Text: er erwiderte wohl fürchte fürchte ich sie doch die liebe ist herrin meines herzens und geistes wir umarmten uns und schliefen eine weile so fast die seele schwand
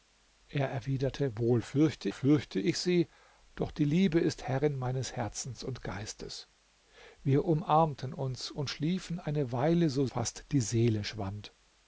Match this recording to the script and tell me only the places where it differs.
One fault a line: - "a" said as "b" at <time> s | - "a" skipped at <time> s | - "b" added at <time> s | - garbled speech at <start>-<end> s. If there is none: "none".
none